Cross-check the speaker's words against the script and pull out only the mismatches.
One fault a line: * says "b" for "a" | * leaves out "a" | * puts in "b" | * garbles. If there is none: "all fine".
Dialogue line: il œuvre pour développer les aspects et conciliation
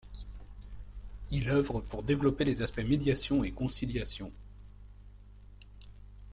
* puts in "médiation"